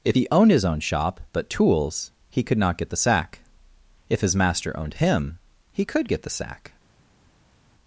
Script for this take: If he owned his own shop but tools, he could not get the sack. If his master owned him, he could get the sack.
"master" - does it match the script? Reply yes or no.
yes